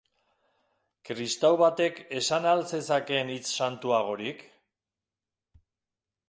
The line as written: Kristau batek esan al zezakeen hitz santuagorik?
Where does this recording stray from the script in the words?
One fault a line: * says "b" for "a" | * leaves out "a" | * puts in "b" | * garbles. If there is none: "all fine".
all fine